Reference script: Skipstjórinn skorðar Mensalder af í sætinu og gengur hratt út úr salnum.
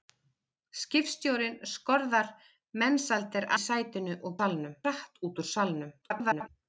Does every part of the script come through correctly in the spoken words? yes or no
no